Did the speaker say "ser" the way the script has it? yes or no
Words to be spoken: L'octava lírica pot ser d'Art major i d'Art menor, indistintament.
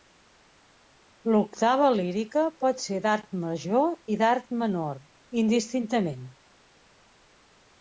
yes